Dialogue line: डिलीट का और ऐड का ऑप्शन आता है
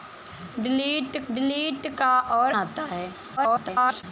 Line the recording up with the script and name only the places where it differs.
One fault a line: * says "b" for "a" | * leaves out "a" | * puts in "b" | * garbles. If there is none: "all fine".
* puts in "डिलीट"
* leaves out "ऐड का ऑप्शन"
* garbles